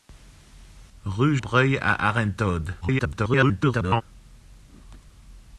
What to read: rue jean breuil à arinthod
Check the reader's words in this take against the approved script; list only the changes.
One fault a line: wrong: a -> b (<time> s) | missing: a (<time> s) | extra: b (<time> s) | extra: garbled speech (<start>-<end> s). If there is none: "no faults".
missing: jean (1.4 s)
extra: garbled speech (2.8-4.0 s)